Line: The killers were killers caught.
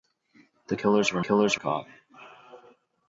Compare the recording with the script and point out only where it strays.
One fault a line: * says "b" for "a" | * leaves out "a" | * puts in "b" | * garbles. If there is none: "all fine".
all fine